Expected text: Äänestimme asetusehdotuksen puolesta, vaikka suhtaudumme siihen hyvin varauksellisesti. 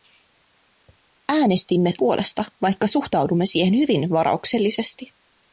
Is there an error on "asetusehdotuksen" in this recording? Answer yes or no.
yes